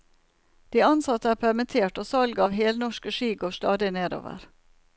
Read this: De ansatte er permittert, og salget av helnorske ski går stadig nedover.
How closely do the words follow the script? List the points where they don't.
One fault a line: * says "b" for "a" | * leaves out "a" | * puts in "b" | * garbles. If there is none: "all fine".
all fine